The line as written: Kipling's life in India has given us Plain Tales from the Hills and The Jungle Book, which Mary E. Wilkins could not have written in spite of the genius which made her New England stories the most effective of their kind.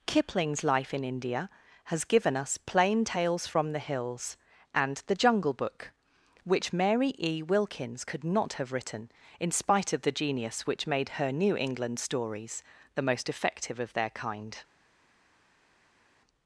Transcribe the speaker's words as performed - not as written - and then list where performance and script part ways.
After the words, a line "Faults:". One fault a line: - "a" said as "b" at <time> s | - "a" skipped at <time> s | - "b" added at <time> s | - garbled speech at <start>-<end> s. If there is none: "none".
Kipling's life in India has given us Plain Tales from the Hills and The Jungle Book, which Mary E. Wilkins could not have written in spite of the genius which made her New England stories the most effective of their kind.
Faults:
none